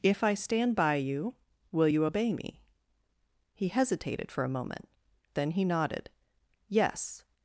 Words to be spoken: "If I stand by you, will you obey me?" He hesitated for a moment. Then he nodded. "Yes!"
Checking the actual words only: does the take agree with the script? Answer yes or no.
yes